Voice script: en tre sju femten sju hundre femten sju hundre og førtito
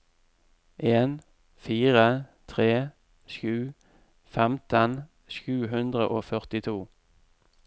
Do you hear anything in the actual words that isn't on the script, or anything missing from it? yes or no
yes